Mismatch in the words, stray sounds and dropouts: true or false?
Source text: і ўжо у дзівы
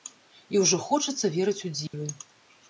true